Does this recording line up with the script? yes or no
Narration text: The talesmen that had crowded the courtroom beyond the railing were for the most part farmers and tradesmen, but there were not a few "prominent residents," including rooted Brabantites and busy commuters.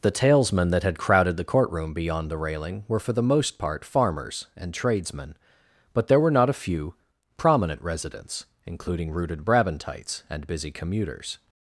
yes